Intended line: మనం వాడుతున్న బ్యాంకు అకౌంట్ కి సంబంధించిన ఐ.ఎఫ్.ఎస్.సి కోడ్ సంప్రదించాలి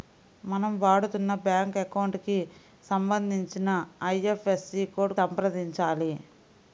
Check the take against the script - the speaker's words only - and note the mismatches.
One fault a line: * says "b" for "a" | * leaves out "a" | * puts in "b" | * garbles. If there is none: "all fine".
all fine